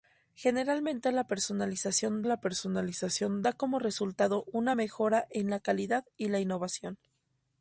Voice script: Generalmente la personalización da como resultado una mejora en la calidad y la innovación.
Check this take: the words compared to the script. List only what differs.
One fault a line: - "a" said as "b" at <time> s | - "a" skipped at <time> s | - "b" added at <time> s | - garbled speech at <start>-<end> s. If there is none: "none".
- "la personalización" added at 2.2 s